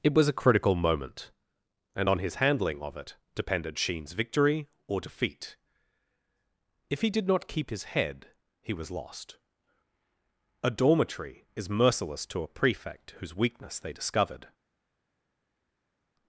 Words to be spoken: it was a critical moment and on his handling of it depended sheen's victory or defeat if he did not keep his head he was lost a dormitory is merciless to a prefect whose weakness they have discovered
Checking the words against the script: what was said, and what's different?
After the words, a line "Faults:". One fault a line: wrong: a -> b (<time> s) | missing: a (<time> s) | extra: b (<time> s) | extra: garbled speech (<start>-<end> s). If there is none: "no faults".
it was a critical moment and on his handling of it depended sheen's victory or defeat if he did not keep his head he was lost a dormitory is merciless to a prefect whose weakness they discovered
Faults:
missing: have (13.9 s)